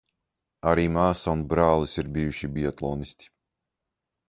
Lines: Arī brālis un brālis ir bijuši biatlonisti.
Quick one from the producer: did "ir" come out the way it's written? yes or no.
yes